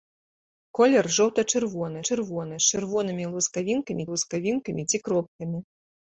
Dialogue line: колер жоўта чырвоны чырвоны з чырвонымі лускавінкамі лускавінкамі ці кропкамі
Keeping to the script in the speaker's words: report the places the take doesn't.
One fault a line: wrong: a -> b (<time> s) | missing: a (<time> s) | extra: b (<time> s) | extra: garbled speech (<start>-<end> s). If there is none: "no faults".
no faults